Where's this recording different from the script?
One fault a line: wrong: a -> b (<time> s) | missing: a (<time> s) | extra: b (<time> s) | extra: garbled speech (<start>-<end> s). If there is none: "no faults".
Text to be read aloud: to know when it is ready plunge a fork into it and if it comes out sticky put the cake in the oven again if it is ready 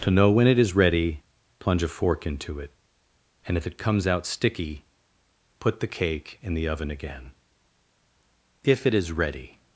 no faults